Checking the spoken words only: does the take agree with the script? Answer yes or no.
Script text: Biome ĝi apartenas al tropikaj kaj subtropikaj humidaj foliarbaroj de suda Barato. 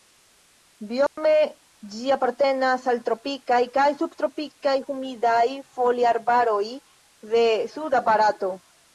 yes